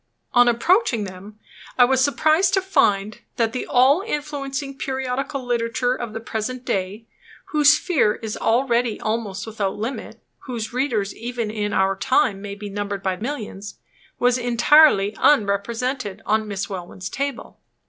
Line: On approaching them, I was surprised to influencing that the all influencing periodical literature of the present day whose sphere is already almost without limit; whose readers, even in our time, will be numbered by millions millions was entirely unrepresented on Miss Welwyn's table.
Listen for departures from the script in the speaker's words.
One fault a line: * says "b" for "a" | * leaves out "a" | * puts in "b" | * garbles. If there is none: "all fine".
* says "find" for "influencing"
* says "may" for "will"
* leaves out "millions"